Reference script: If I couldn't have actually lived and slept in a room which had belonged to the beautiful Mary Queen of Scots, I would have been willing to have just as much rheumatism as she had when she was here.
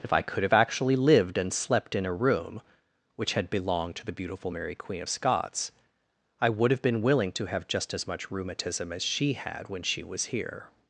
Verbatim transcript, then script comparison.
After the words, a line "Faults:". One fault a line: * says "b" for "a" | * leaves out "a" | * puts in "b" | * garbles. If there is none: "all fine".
If I could have actually lived and slept in a room which had belonged to the beautiful Mary Queen of Scots, I would have been willing to have just as much rheumatism as she had when she was here.
Faults:
* says "could" for "couldn't"